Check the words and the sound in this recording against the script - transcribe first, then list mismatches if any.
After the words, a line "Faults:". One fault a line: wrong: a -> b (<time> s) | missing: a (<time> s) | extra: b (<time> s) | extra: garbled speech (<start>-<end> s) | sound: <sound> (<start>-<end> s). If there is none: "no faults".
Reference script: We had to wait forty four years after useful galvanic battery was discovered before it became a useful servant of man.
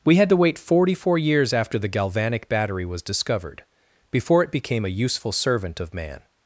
We had to wait forty four years after the galvanic battery was discovered before it became a useful servant of man.
Faults:
wrong: useful -> the (1.8 s)